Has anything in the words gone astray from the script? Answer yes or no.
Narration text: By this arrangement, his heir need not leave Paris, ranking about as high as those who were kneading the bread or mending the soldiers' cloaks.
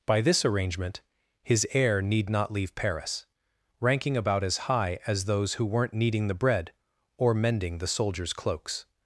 yes